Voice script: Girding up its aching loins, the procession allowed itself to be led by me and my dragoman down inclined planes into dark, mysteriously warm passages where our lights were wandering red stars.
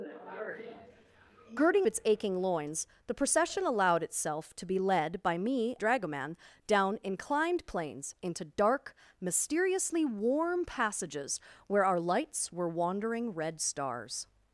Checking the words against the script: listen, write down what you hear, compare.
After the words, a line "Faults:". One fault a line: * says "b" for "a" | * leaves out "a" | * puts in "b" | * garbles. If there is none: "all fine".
Girding its aching loins, the procession allowed itself to be led by me dragoman down inclined planes into dark, mysteriously warm passages where our lights were wandering red stars.
Faults:
* leaves out "up"
* leaves out "and my"